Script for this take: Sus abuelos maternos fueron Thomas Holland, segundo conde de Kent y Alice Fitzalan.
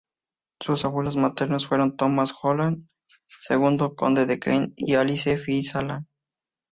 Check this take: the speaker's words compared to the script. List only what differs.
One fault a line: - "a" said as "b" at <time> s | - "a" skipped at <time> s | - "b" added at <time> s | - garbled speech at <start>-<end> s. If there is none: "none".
none